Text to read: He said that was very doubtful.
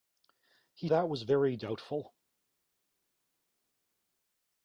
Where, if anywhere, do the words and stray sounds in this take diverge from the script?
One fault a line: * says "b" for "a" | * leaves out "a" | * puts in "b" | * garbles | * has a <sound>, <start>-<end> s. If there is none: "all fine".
* leaves out "said"